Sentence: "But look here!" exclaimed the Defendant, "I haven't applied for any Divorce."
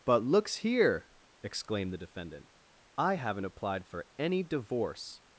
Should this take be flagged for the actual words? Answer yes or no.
yes